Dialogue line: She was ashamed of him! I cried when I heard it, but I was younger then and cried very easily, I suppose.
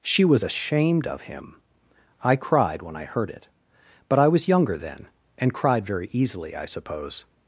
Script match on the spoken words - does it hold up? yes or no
yes